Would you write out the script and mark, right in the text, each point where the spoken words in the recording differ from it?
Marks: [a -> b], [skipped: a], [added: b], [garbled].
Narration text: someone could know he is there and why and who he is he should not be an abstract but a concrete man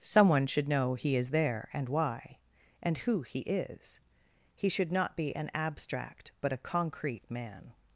someone [could -> should] know he is there and why and who he is he should not be an abstract but a concrete man